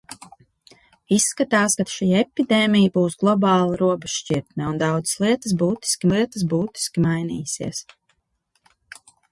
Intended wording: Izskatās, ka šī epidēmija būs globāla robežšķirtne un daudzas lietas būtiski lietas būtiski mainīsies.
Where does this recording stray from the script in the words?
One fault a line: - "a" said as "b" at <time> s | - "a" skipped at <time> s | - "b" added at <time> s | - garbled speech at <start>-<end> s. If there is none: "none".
none